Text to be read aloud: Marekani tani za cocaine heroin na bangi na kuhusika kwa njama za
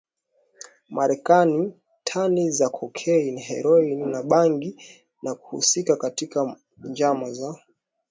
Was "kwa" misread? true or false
true